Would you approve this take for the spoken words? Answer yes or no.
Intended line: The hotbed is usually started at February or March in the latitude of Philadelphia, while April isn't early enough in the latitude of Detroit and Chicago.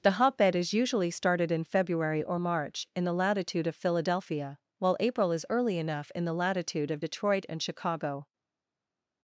no